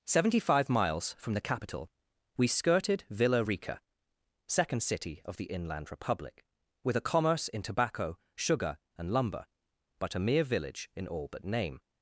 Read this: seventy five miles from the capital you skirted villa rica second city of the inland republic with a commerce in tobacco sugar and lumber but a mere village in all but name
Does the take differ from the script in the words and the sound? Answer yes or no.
yes